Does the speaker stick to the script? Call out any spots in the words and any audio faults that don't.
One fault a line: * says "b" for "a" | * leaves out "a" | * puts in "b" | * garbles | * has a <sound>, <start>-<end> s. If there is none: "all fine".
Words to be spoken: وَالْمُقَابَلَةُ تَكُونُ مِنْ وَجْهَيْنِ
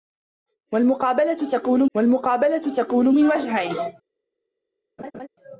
* puts in "وَالْمُقَابَلَةُ تَكُونُ"
* has a laugh, 5.0-5.3 s